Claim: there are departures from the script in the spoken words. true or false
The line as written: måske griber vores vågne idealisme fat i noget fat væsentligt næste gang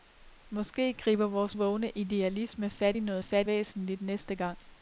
false